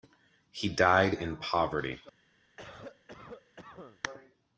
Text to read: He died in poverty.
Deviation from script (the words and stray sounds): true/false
true